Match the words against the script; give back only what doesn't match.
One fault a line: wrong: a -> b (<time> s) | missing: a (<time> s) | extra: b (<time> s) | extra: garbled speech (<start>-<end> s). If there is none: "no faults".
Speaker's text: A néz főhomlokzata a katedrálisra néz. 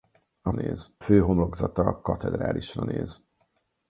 no faults